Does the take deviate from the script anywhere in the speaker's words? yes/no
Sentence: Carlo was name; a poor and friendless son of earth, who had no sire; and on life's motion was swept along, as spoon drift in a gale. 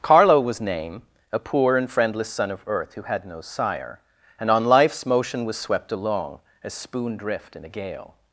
no